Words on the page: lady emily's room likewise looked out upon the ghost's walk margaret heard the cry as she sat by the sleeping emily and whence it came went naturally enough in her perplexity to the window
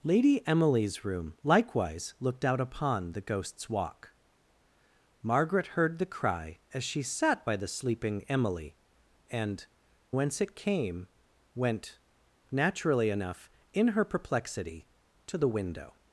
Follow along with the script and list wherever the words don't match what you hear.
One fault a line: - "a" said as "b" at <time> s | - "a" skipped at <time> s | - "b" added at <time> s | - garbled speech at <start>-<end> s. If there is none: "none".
none